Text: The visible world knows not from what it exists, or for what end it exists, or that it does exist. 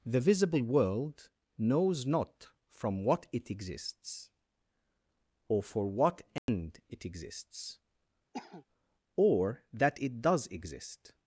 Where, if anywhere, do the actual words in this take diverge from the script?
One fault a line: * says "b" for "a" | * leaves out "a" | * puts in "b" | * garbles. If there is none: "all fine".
all fine